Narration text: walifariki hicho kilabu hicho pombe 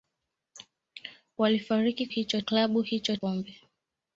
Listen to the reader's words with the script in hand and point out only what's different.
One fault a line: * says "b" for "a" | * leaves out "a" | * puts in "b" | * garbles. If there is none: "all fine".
all fine